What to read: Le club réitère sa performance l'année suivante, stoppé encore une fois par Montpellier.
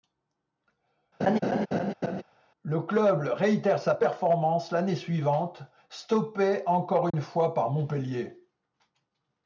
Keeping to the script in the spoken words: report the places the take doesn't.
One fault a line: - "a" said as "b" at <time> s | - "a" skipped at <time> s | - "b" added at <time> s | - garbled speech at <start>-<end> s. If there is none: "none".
none